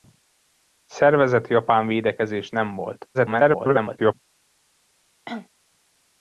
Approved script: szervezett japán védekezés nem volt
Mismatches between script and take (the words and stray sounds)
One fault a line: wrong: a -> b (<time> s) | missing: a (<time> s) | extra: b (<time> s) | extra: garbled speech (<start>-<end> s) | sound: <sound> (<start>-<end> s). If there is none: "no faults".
extra: garbled speech (3.1-4.1 s)
sound: cough (5.3-5.5 s)